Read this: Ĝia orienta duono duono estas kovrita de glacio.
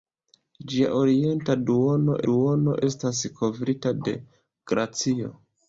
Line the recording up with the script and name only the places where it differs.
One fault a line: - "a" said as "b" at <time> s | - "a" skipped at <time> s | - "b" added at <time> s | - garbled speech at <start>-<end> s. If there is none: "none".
none